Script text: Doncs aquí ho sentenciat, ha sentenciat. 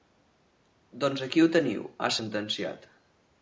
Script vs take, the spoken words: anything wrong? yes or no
yes